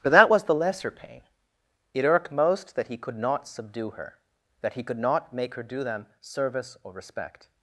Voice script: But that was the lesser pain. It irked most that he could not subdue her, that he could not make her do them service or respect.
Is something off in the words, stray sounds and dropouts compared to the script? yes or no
no